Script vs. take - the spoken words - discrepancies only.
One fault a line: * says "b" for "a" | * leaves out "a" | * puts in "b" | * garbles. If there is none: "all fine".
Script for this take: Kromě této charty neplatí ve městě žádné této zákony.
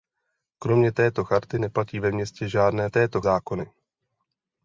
all fine